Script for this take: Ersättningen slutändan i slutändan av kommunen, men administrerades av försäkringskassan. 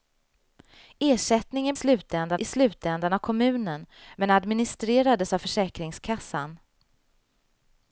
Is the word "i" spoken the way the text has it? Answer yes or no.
yes